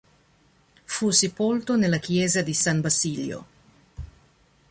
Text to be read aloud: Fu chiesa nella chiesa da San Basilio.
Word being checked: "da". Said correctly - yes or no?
no